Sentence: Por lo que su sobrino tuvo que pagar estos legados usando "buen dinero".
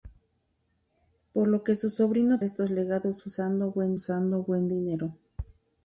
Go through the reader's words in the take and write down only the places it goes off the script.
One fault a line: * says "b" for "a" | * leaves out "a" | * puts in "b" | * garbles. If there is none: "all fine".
* says "estos legados usando buen" for "tuvo que pagar estos legados"